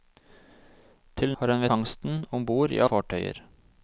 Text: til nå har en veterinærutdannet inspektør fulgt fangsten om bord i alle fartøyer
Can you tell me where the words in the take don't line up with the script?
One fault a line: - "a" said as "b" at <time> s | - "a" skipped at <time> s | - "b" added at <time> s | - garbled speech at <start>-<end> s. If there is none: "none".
- "nå" skipped at 1.4 s
- "veterinærutdannet inspektør fulgt" skipped at 1.7 s
- "alle" skipped at 2.8 s